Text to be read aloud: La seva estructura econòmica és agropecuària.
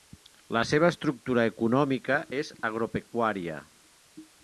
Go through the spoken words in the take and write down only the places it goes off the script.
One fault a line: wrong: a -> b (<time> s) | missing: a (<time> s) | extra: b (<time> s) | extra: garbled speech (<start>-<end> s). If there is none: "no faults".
no faults